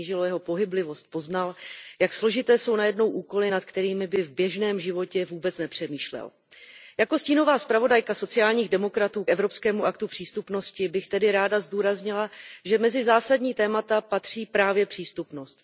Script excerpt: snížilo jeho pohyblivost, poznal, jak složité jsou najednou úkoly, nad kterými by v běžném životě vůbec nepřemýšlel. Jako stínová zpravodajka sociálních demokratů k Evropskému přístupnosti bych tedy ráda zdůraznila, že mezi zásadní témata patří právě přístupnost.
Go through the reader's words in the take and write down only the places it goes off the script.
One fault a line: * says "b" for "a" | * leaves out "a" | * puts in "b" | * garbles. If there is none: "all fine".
* puts in "aktu"